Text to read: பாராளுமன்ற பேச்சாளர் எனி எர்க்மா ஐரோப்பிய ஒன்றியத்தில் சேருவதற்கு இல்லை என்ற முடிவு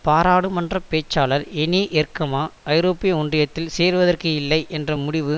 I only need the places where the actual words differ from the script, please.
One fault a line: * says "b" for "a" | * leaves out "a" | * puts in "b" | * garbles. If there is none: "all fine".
all fine